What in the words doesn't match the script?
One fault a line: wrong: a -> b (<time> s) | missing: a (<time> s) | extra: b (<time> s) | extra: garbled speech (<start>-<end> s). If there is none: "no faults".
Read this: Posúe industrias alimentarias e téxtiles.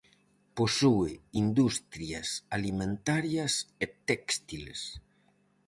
no faults